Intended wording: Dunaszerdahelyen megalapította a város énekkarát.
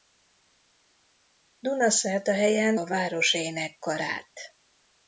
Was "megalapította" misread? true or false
true